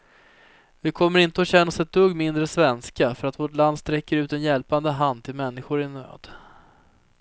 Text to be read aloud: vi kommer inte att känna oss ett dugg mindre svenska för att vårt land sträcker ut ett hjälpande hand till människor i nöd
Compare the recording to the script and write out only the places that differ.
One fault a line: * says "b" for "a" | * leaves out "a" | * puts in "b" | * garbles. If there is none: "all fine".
* says "en" for "ett"